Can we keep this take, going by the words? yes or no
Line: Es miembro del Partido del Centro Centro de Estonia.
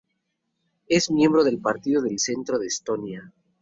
no